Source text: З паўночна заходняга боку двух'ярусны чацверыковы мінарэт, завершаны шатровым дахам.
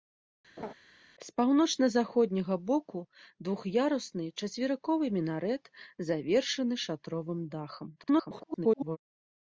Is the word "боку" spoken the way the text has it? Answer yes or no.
yes